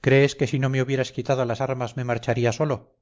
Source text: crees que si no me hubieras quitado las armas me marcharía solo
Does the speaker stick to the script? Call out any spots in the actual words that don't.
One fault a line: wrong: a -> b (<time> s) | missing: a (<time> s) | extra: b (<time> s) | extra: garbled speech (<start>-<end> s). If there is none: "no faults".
no faults